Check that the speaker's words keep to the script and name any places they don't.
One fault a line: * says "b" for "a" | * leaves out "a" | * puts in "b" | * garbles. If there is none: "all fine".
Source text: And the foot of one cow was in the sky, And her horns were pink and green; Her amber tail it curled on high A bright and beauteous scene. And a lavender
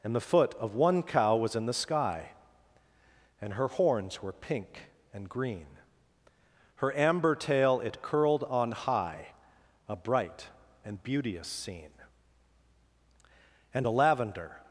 all fine